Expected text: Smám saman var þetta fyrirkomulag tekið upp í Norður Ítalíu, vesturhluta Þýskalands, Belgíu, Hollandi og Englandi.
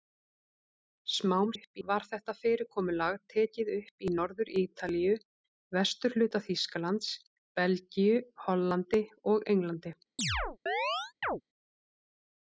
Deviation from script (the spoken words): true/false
true